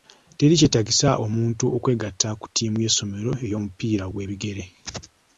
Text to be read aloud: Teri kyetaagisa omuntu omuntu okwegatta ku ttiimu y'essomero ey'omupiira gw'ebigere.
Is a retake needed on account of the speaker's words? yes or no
yes